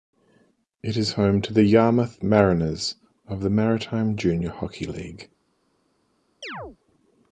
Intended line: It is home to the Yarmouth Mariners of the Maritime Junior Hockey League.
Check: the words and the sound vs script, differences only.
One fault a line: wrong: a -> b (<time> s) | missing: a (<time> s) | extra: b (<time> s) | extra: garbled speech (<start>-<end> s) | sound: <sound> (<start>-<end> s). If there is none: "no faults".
sound: chirp (6.4-6.8 s)